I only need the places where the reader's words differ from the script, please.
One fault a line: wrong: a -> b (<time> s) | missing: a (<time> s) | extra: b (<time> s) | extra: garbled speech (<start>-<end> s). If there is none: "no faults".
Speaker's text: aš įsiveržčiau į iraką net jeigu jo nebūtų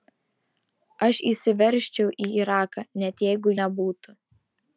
missing: jo (3.6 s)